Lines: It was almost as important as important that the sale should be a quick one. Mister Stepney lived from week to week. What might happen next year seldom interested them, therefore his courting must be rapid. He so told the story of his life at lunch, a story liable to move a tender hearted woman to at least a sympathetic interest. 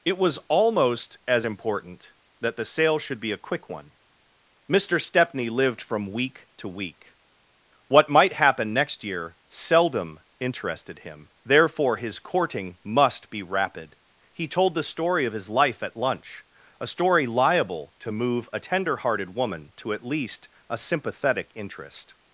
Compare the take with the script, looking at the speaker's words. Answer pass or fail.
fail